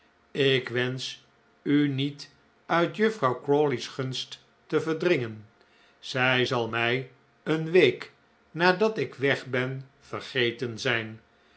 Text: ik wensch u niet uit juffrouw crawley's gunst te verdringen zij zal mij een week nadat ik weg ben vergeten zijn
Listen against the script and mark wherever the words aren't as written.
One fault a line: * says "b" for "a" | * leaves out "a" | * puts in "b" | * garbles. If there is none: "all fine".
all fine